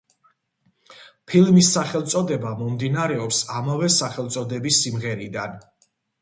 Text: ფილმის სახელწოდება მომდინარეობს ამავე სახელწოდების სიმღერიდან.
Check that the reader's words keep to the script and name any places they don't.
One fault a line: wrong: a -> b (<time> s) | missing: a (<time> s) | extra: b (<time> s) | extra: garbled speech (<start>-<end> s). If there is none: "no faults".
no faults